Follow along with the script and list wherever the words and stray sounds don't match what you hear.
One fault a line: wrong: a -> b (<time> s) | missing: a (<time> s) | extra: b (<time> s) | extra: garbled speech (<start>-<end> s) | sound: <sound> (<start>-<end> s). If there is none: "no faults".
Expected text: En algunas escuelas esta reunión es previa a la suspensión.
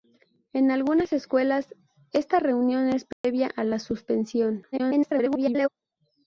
sound: dropout (3.1-3.2 s)
extra: garbled speech (4.7-5.7 s)